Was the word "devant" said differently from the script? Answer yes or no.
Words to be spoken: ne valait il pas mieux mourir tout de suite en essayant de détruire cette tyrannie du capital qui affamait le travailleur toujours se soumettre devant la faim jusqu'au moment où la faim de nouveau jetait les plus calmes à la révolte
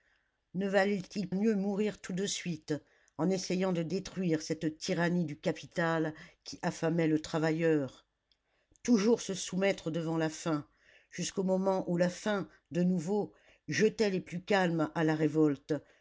no